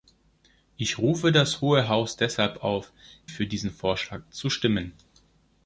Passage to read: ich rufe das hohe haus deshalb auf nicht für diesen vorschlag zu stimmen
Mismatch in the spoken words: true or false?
true